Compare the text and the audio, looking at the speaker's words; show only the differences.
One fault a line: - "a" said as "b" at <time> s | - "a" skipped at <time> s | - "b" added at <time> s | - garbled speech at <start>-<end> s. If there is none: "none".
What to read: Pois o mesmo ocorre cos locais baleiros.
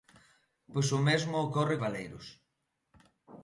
- "cos locais" skipped at 1.8 s